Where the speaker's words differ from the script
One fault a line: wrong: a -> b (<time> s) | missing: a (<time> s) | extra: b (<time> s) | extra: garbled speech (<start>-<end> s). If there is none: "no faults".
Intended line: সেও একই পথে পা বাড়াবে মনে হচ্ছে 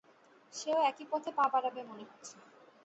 no faults